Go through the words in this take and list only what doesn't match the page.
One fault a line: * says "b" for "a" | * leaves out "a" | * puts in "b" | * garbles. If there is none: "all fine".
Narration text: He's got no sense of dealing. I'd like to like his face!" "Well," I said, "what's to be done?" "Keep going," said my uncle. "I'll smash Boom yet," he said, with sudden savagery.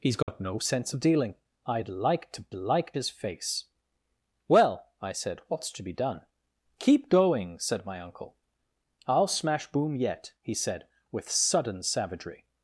all fine